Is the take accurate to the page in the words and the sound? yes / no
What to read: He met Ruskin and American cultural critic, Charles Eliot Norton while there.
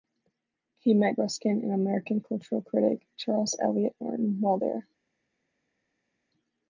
yes